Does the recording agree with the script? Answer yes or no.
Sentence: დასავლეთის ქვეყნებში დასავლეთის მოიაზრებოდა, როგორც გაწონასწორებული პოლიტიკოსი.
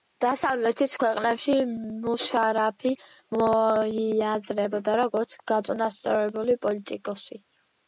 no